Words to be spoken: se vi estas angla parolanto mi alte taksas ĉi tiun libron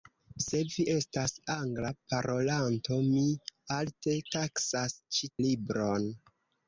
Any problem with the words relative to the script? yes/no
yes